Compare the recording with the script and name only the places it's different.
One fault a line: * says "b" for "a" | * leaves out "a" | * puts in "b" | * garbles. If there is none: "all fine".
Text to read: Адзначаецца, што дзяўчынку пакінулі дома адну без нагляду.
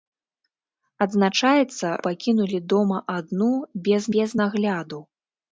* leaves out "што дзяўчынку"
* puts in "без"